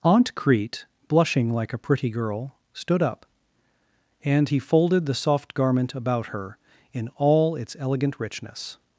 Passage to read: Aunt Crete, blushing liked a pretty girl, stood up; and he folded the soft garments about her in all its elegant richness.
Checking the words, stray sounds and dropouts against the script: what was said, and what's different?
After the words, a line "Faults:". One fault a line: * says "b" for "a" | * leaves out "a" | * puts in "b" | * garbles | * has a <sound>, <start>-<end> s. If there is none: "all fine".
Aunt Crete, blushing like a pretty girl, stood up; and he folded the soft garment about her in all its elegant richness.
Faults:
* says "like" for "liked"
* says "garment" for "garments"